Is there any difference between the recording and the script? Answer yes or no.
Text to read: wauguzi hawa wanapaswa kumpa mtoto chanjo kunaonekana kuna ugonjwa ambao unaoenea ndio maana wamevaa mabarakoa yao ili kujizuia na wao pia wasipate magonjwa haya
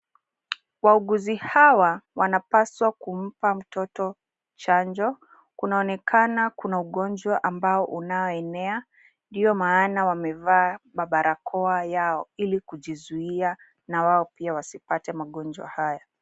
no